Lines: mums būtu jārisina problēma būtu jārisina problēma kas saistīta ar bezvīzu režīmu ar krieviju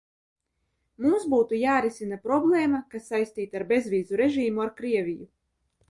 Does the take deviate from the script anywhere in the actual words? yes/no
yes